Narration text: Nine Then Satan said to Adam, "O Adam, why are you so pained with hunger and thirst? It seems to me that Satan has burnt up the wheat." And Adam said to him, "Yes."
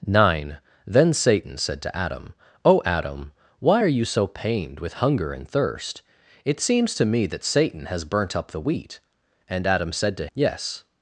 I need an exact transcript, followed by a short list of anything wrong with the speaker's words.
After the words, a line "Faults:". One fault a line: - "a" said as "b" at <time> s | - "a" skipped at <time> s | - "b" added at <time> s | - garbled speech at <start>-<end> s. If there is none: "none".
Nine Then Satan said to Adam, "O Adam, why are you so pained with hunger and thirst? It seems to me that Satan has burnt up the wheat." And Adam said to "Yes."
Faults:
- "him" skipped at 10.3 s